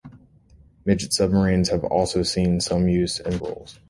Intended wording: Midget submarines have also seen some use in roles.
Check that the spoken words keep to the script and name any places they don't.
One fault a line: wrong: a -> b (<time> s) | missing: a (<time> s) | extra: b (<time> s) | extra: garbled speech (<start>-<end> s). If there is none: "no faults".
no faults